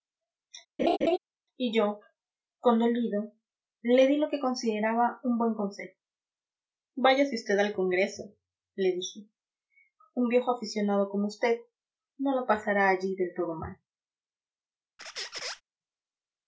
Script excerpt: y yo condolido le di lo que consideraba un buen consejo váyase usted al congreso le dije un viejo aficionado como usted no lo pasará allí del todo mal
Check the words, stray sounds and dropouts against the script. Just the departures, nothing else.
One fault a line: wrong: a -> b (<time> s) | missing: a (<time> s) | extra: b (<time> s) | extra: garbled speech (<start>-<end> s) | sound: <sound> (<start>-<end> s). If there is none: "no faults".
sound: laugh (0.8-1.2 s)
sound: squeak (15.0-15.6 s)